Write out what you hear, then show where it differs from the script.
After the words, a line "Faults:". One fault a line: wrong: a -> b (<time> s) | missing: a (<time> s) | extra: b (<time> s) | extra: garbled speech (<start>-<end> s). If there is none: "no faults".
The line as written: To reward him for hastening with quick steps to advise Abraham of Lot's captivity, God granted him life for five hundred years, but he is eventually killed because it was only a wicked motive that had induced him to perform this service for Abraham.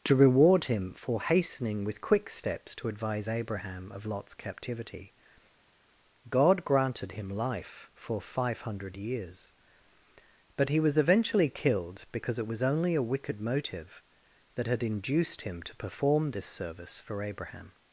To reward him for hastening with quick steps to advise Abraham of Lot's captivity, God granted him life for five hundred years, but he was eventually killed because it was only a wicked motive that had induced him to perform this service for Abraham.
Faults:
wrong: is -> was (10.8 s)